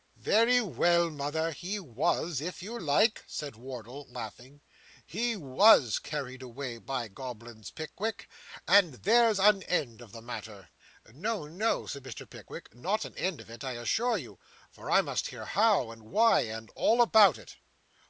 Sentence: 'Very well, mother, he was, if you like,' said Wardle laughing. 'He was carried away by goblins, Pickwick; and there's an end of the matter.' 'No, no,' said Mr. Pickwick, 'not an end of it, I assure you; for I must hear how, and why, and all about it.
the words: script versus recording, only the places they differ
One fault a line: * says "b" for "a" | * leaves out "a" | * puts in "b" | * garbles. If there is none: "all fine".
all fine